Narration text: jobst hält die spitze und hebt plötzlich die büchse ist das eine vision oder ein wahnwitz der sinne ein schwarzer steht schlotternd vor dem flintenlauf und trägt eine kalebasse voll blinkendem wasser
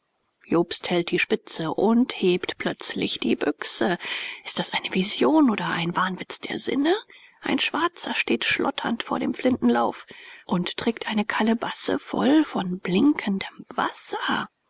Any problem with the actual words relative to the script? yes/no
yes